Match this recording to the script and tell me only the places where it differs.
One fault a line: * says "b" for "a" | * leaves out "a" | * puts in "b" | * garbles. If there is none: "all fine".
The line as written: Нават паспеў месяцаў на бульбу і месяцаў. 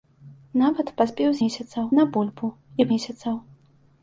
all fine